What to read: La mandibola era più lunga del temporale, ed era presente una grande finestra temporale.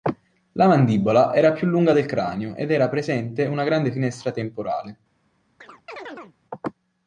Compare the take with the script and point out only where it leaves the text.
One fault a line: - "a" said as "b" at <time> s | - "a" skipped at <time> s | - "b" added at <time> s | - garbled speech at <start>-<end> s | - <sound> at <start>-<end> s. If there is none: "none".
- "temporale" said as "cranio" at 2.0 s
- chirp at 5.6-6.4 s